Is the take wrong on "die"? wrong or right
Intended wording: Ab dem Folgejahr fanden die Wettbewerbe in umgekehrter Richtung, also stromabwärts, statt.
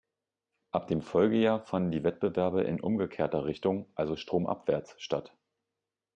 right